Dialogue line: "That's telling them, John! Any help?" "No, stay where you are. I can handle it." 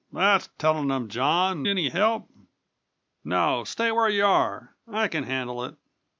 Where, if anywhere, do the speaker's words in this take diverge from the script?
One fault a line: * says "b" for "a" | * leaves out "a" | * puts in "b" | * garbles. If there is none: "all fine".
all fine